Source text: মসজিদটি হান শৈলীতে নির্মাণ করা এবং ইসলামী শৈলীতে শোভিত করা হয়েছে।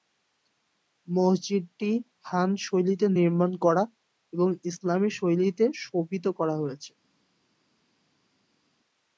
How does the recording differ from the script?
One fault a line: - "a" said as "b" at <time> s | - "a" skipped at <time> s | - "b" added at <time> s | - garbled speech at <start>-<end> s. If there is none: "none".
none